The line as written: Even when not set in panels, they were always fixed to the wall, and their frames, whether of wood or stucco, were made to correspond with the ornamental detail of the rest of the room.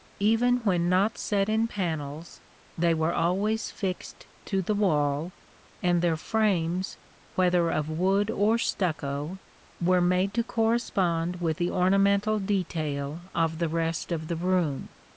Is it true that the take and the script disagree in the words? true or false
false